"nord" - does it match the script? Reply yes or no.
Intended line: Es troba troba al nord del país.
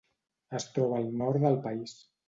yes